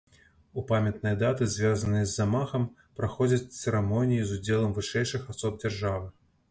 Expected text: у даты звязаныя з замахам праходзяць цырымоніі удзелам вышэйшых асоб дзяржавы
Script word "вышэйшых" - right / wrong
right